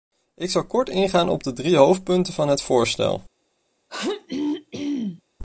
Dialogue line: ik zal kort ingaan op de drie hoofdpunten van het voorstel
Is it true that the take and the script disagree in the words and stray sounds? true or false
true